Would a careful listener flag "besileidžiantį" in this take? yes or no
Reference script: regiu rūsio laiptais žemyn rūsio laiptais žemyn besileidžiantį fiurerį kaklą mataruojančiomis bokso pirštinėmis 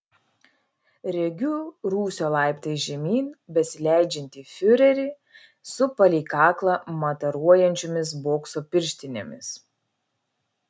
yes